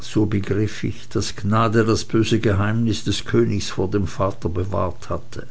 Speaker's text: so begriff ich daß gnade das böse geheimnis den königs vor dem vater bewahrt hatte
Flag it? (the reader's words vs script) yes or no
yes